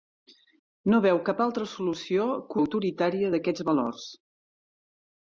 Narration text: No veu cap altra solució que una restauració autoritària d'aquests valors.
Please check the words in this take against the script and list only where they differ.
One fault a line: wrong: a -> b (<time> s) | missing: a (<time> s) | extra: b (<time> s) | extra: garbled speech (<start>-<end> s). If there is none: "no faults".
missing: una restauració (2.6 s)